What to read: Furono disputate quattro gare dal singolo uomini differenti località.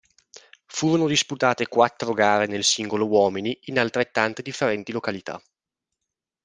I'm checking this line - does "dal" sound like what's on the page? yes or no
no